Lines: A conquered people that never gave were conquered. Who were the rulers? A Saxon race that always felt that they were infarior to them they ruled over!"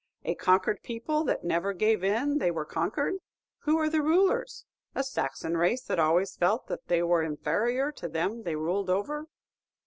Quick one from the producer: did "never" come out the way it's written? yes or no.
yes